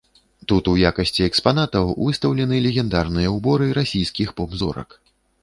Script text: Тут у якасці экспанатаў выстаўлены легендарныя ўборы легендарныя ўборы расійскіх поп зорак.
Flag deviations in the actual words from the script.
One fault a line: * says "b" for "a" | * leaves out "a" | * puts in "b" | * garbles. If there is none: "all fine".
* leaves out "легендарныя ўборы"